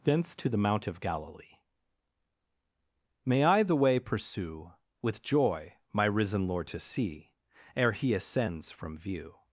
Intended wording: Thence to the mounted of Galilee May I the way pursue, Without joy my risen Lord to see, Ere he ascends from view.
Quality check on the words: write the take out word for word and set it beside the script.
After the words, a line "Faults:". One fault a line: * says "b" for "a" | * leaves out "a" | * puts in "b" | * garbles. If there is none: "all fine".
Thence to the mount of Galilee May I the way pursue, With joy my risen Lord to see, Ere he ascends from view.
Faults:
* says "mount" for "mounted"
* says "With" for "Without"